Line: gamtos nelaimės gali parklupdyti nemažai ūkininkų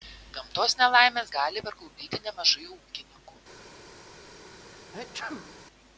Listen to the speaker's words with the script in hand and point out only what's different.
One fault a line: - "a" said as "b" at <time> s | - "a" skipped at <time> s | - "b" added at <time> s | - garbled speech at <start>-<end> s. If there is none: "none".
none